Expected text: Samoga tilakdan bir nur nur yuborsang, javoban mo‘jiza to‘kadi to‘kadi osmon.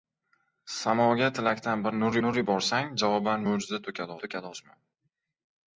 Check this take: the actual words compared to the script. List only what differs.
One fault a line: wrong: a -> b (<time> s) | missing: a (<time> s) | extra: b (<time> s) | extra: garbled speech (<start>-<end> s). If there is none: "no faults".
no faults